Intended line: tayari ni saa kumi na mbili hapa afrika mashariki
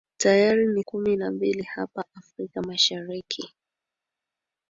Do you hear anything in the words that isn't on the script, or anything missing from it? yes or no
yes